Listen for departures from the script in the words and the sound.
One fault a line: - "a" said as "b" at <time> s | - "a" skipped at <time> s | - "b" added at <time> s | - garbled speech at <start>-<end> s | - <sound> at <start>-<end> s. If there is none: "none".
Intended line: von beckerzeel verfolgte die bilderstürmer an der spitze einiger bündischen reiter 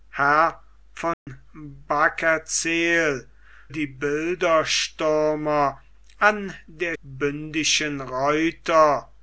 - dropout at 1.1-1.3 s
- "verfolgte" skipped at 3.3 s
- "spitze einiger" skipped at 7.0 s